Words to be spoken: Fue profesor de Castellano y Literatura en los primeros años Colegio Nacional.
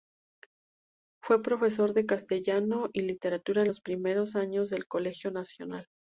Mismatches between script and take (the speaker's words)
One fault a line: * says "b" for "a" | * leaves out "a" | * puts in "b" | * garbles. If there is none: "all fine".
* puts in "del"